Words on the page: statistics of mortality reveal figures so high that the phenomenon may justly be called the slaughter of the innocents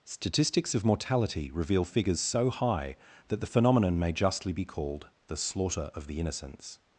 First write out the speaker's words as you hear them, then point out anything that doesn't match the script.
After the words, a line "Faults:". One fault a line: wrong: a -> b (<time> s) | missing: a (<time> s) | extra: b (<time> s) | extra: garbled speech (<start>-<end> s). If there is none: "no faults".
statistics of mortality reveal figures so high that the phenomenon may justly be called the slaughter of the innocents
Faults:
no faults